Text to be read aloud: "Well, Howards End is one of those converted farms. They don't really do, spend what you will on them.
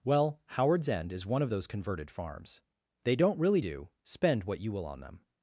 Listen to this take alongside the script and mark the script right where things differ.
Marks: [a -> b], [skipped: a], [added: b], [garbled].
"Well, Howards End is one of those converted farms. They don't really do, spend what you will on them.